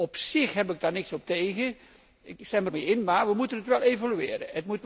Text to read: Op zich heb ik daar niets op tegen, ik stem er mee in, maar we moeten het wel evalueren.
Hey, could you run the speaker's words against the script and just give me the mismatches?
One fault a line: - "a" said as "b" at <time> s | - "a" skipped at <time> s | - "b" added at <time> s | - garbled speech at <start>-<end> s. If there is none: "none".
none